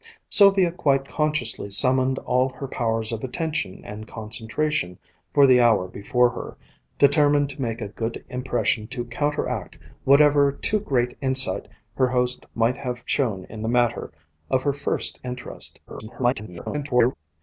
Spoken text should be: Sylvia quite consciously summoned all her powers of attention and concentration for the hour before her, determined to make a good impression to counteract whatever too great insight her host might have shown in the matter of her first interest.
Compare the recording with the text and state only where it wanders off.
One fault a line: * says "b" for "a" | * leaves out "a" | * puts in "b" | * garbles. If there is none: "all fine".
* garbles